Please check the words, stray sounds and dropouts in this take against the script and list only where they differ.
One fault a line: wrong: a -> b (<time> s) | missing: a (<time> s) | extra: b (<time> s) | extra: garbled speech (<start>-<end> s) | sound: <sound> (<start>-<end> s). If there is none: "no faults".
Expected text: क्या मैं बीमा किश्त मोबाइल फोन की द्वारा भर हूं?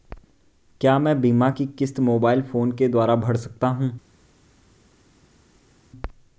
extra: की (1.5 s)
wrong: की -> के (2.7 s)
extra: सकता (3.4 s)